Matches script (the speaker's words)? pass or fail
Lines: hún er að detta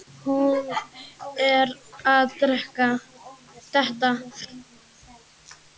pass